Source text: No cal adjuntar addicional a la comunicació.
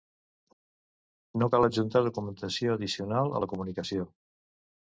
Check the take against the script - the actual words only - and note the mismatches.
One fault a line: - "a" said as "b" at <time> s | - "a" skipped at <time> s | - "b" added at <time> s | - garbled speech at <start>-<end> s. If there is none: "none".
- "documentació" added at 2.1 s